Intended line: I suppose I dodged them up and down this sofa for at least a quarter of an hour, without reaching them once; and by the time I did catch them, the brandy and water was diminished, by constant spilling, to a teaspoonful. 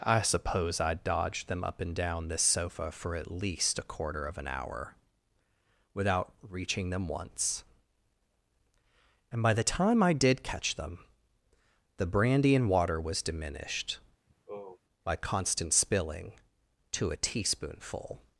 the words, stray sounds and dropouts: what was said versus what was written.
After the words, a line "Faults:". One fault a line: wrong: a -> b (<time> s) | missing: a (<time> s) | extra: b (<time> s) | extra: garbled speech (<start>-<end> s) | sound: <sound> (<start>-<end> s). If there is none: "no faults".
I suppose I dodged them up and down this sofa for at least a quarter of an hour, without reaching them once; and by the time I did catch them, the brandy and water was diminished, by constant spilling, to a teaspoonful.
Faults:
sound: sigh (14.3-14.8 s)